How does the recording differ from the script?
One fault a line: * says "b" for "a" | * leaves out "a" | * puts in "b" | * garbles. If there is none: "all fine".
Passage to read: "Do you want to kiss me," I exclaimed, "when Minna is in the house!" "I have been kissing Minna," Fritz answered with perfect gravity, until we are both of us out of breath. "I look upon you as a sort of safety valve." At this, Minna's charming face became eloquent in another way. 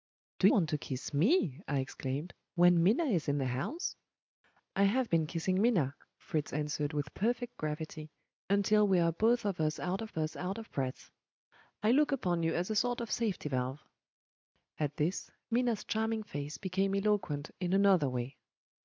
* leaves out "you"
* puts in "us out of"